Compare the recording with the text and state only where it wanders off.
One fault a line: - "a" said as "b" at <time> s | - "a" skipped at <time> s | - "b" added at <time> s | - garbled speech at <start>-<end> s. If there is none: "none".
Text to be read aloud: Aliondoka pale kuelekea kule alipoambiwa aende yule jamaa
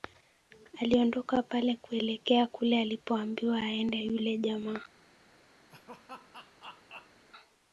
none